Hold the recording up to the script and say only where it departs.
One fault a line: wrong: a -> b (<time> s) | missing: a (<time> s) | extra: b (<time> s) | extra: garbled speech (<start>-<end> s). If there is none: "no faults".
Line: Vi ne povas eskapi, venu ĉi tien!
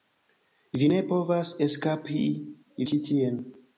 missing: venu (2.2 s)